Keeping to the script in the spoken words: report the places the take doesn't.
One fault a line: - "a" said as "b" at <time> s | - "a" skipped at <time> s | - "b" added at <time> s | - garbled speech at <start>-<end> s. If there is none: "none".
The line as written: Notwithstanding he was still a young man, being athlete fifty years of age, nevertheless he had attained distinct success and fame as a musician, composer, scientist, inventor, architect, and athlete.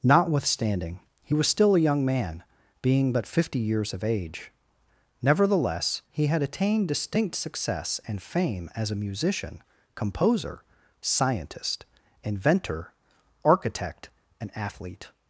- "athlete" said as "but" at 3.1 s